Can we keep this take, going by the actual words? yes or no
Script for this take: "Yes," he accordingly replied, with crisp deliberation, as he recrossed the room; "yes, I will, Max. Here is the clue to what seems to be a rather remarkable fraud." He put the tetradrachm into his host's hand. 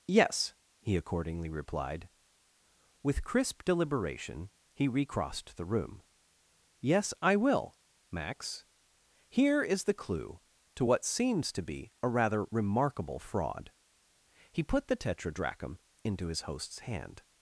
no